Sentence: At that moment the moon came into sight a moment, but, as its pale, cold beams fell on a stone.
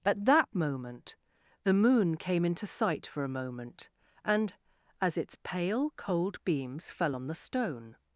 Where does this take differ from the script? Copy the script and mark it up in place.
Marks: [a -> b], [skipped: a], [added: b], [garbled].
At that moment the moon came into sight [added: for] a moment, [but, -> and] as its pale, cold beams fell on [a -> the] stone.